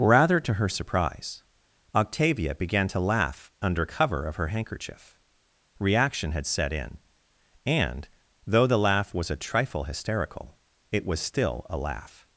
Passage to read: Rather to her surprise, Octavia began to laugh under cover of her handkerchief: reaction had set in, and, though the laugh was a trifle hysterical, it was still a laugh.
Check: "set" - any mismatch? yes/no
no